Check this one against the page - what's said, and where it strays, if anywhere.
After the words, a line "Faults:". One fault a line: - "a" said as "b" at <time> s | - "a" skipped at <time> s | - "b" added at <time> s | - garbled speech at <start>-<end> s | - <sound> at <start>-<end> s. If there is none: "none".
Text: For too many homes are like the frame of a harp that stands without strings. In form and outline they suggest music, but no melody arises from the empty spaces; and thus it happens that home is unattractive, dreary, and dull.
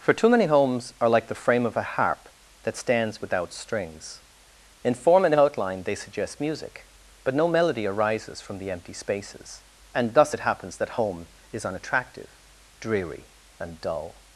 For too many homes are like the frame of a harp that stands without strings. In form and outline they suggest music, but no melody arises from the empty spaces; and thus it happens that home is unattractive, dreary, and dull.
Faults:
none